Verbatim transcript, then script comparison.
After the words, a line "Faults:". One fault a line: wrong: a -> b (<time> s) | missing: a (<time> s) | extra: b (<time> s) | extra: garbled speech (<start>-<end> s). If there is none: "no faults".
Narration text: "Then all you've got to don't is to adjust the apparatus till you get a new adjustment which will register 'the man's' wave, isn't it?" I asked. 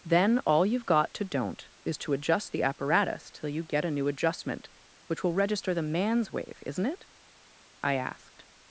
"Then all you've got to don't is to adjust the apparatus till you get a new adjustment which will register 'the man's' wave, isn't it?" I asked.
Faults:
no faults